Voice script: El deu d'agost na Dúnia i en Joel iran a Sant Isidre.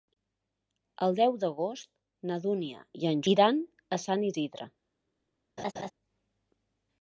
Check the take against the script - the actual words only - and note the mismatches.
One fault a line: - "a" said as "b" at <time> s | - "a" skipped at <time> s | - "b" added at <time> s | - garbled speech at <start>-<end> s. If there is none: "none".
- "Joel" skipped at 3.2 s